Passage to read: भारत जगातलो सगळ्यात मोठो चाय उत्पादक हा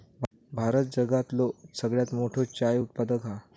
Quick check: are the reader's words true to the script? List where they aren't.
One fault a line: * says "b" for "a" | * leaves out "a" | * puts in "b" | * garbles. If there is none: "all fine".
all fine